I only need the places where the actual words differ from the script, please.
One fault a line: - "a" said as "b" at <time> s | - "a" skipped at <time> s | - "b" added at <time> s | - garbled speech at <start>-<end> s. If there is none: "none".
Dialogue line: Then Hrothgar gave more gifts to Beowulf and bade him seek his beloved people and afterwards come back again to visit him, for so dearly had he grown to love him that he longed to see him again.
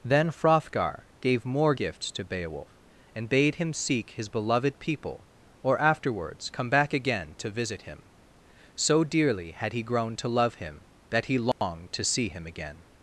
- "and" said as "or" at 5.6 s
- "for" skipped at 8.0 s